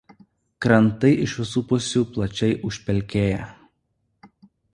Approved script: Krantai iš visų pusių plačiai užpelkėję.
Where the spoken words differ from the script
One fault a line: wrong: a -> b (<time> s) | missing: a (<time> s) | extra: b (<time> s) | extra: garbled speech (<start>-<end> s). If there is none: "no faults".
no faults